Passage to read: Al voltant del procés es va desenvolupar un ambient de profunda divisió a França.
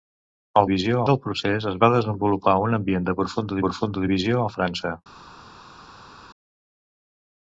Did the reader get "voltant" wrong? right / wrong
wrong